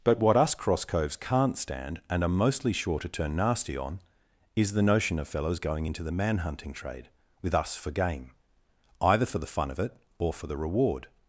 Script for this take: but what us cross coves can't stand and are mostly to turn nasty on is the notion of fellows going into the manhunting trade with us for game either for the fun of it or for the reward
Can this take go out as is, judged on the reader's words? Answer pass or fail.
fail